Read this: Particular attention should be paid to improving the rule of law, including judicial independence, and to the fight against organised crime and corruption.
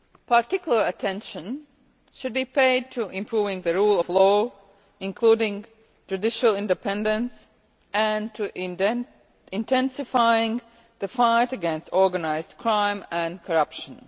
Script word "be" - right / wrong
right